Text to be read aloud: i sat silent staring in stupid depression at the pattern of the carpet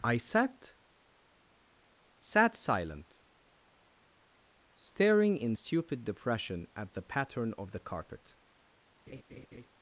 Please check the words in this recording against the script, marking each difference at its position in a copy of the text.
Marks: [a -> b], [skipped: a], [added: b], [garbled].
i sat [added: sat] silent staring in stupid depression at the pattern of the carpet